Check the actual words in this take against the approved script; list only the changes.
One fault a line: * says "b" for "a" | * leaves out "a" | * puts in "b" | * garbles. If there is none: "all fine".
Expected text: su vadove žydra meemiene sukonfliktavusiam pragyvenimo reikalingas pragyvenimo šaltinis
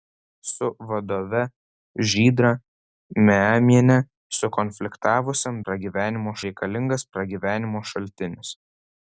all fine